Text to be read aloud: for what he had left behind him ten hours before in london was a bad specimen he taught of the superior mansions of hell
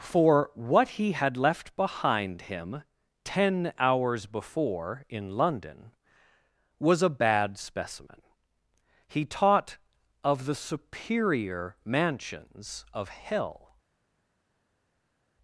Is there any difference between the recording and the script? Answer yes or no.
no